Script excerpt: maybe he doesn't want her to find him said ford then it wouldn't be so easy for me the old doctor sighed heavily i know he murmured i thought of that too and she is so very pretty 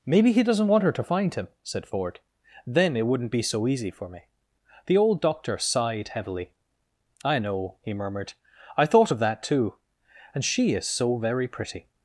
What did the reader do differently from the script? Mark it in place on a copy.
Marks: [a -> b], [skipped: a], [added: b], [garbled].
maybe he doesn't want her to find him said ford then it wouldn't be so easy for me the old doctor sighed heavily i know he murmured i thought of that too and she is so very pretty